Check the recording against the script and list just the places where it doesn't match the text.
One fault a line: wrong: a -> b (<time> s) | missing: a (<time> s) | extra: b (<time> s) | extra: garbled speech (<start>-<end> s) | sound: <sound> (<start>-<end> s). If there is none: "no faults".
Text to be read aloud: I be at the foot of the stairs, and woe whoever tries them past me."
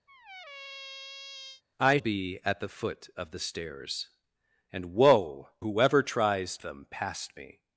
sound: squeak (0.1-1.6 s)